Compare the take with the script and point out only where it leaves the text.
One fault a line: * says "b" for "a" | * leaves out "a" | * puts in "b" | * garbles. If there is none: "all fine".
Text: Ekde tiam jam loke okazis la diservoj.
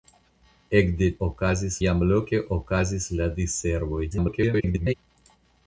* says "okazis" for "tiam"
* garbles